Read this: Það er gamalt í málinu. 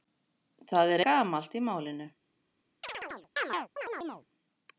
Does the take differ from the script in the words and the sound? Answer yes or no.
yes